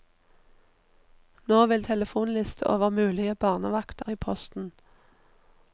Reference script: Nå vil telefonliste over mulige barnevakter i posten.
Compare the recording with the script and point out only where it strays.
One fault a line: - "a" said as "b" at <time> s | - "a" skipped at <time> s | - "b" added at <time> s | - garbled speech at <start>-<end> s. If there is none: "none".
none